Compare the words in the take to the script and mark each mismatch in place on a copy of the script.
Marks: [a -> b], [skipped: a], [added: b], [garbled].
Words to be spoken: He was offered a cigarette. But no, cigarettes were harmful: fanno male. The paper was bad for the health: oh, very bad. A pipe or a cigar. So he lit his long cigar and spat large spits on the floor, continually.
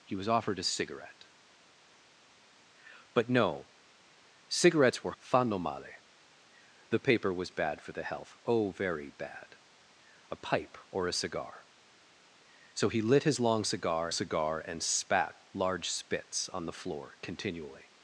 He was offered a cigarette. But no, cigarettes were [skipped: harmful:] fanno male. The paper was bad for the health: oh, very bad. A pipe or a cigar. So he lit his long cigar [added: cigar] and spat large spits on the floor, continually.